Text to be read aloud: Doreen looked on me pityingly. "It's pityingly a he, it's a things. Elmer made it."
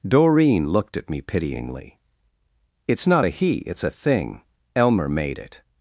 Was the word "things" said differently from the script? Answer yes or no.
yes